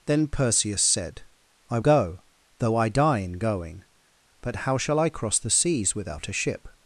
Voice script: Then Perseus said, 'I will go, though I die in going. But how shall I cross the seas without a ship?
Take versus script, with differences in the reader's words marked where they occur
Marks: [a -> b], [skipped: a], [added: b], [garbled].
Then Perseus said, 'I [skipped: will] go, though I die in going. But how shall I cross the seas without a ship?